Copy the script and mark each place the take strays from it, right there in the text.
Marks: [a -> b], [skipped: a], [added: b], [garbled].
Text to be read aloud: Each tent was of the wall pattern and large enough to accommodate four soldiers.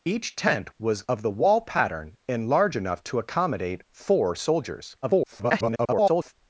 Each tent was of the wall pattern and large enough to accommodate four soldiers. [garbled]